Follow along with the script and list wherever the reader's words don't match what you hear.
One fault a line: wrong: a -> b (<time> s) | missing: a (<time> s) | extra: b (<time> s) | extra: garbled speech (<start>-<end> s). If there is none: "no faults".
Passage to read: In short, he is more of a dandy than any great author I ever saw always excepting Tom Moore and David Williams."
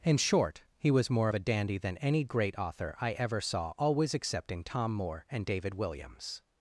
wrong: is -> was (0.9 s)